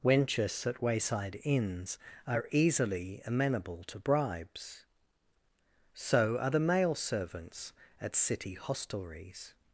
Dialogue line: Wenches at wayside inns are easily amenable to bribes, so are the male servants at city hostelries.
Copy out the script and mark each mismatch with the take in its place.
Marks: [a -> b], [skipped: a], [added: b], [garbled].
Wenches at wayside inns are easily amenable to bribes, so are the male servants at city hostelries.